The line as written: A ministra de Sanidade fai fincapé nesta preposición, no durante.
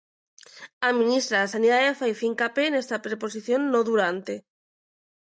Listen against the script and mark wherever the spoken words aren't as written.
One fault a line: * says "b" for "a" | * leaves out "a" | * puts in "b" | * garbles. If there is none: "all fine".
all fine